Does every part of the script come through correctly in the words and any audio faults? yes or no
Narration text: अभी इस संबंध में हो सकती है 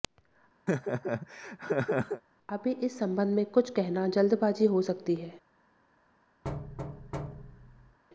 no